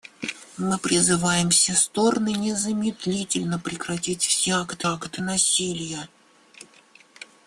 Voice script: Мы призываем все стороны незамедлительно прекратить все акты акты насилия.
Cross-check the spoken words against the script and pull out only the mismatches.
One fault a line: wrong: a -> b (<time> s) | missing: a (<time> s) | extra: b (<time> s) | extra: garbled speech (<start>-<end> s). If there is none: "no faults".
no faults